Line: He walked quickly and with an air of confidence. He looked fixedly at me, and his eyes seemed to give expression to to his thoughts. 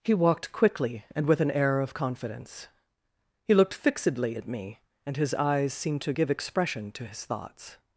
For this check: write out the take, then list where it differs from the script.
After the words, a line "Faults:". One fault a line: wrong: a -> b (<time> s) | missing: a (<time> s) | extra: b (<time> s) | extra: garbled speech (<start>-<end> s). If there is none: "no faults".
He walked quickly and with an air of confidence. He looked fixedly at me, and his eyes seemed to give expression to his thoughts.
Faults:
missing: to (7.1 s)